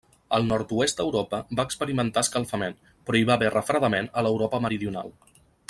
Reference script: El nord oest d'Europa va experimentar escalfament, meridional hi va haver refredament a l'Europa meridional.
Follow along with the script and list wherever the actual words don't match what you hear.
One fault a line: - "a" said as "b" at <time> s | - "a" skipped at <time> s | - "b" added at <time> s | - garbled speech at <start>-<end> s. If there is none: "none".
- "meridional" said as "però" at 3.1 s